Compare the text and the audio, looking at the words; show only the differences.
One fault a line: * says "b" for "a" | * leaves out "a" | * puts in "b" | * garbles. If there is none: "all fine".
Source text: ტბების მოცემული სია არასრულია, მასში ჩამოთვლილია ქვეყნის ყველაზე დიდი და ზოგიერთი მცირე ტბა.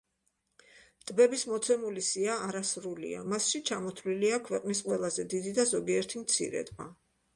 all fine